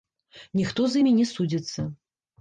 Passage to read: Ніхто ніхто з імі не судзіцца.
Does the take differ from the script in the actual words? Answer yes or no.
yes